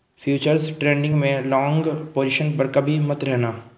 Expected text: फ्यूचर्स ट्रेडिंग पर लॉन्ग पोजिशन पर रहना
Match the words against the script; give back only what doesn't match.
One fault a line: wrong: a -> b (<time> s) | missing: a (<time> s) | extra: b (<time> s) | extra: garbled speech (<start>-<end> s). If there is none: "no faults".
wrong: पर -> में (1.1 s)
extra: कभी मत (2.7 s)